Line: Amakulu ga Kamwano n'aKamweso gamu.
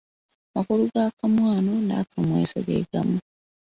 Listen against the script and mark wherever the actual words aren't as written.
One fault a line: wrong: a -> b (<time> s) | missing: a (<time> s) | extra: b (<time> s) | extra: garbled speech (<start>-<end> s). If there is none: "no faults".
extra: ge (2.7 s)